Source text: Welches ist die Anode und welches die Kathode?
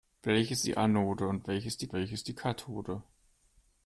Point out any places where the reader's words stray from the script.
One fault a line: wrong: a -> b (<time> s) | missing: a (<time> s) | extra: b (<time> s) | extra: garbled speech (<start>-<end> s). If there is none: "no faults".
missing: ist (0.7 s)
extra: welches die (1.9 s)